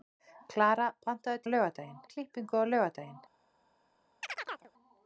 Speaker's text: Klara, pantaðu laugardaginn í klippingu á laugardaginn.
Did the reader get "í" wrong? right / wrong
right